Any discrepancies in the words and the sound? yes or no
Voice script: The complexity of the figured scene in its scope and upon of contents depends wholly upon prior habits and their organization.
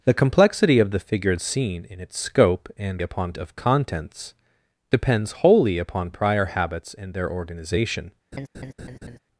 yes